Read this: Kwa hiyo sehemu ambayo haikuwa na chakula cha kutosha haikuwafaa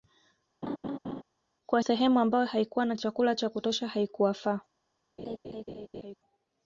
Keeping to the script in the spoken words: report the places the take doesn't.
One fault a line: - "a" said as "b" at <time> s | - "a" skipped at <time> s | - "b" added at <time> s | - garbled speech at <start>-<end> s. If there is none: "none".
- "hiyo" skipped at 1.8 s